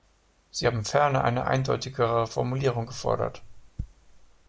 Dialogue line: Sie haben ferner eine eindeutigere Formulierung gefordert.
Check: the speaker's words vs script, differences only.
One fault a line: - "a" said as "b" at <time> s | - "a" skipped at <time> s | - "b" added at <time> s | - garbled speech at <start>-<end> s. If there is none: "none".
none